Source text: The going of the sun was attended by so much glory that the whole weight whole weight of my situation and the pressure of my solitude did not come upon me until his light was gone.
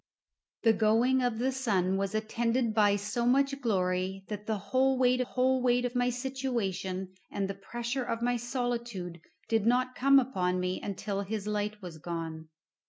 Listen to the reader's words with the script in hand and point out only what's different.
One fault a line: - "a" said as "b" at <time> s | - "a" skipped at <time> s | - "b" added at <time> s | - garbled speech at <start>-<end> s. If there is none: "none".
none